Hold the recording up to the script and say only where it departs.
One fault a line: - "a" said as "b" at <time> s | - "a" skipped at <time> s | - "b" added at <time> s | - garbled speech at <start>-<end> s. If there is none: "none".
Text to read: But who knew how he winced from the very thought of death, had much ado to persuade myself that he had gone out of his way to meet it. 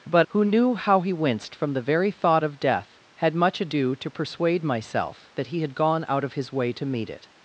none